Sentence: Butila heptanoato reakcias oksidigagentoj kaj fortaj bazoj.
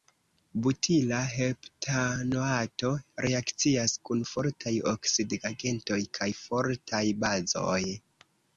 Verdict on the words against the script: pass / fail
fail